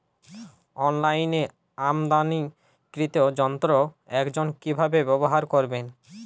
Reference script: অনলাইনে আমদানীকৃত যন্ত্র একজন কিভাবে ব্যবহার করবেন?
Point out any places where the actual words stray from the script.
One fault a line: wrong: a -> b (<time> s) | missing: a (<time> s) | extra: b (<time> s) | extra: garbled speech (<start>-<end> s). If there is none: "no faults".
no faults